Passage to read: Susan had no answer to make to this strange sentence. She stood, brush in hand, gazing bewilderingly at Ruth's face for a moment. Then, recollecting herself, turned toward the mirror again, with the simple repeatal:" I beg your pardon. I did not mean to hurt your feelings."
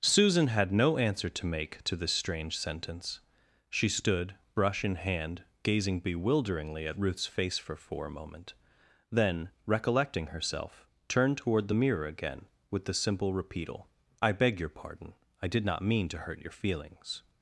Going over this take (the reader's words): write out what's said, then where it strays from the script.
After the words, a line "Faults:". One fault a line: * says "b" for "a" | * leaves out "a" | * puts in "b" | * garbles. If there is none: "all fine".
Susan had no answer to make to this strange sentence. She stood, brush in hand, gazing bewilderingly at Ruth's face for for a moment. Then, recollecting herself, turned toward the mirror again, with the simple repeatal:" I beg your pardon. I did not mean to hurt your feelings."
Faults:
* puts in "for"